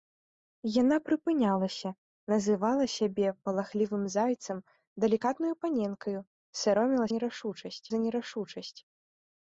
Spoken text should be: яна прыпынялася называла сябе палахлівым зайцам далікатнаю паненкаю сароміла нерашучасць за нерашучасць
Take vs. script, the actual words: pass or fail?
pass